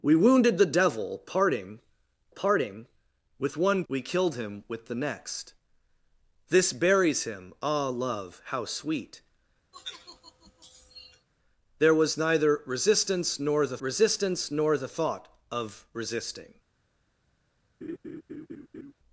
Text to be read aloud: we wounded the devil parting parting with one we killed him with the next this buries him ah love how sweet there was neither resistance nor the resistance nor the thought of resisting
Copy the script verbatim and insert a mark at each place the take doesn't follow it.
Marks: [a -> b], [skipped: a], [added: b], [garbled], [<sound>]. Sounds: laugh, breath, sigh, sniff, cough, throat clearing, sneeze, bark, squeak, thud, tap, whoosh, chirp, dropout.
we wounded the devil parting parting with one we killed him with the next this buries him ah love how sweet [sigh] there was neither resistance nor the resistance nor the thought of resisting [laugh]